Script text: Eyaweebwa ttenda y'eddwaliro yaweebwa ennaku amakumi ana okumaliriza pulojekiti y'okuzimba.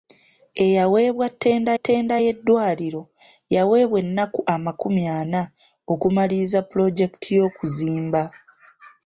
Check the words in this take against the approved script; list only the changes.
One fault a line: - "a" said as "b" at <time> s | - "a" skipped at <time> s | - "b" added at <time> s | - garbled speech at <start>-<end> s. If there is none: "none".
- "ttenda" added at 1.8 s